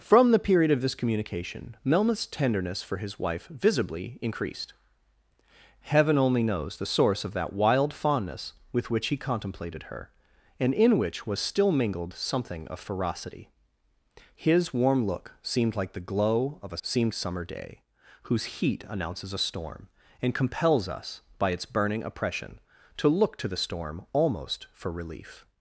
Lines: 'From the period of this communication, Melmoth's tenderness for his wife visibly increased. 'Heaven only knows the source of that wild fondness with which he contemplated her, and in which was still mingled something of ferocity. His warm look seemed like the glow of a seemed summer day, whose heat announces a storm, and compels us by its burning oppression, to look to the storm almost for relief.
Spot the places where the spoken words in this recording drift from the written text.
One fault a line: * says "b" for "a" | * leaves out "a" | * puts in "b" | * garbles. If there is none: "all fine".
all fine